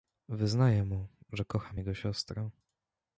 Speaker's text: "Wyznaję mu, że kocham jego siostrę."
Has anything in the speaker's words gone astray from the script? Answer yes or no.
no